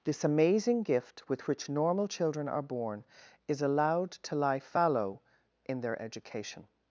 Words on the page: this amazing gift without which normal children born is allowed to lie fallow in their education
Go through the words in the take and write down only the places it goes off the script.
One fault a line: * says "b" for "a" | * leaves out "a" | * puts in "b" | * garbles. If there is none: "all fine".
* says "with" for "without"
* puts in "are"